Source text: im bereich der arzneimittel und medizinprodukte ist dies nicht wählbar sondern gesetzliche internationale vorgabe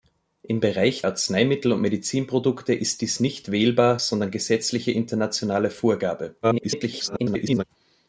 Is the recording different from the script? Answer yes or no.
yes